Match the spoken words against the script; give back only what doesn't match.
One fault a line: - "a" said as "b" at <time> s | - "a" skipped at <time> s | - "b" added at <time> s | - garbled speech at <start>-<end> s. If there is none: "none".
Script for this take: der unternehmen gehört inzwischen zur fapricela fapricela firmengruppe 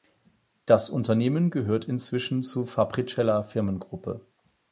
- "der" said as "das" at 0.7 s
- "fapricela" skipped at 3.4 s